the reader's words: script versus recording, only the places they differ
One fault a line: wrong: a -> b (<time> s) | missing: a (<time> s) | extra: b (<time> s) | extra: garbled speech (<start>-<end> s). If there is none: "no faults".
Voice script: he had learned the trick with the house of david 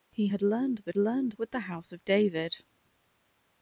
wrong: trick -> learned (1.0 s)